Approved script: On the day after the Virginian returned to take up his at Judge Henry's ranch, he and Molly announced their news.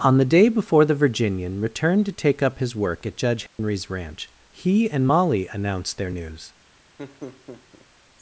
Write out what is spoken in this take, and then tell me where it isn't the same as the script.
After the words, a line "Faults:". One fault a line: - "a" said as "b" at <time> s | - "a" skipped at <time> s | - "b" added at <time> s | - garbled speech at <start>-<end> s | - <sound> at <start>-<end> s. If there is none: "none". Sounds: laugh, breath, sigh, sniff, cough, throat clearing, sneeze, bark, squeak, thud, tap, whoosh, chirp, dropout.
On the day before the Virginian returned to take up his work at Judge Henry's ranch, he and Molly announced their news.
Faults:
- "after" said as "before" at 0.5 s
- "work" added at 2.8 s
- dropout at 3.5-3.6 s
- laugh at 7.0-7.9 s